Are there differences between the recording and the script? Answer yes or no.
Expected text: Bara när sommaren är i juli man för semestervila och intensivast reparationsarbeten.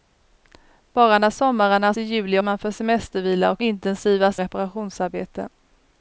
no